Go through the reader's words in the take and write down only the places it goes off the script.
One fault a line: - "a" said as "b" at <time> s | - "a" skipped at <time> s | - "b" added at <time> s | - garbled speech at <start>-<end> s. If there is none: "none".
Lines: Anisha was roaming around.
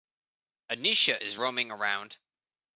- "was" said as "is" at 1.2 s